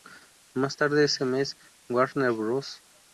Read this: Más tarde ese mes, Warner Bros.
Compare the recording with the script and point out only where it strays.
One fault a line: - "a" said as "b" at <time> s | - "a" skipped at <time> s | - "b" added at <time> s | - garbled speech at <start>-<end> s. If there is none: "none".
none